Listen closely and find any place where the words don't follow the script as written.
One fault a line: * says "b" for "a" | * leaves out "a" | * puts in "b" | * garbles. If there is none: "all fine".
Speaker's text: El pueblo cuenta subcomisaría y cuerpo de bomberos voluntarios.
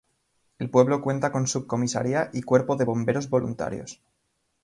* puts in "con"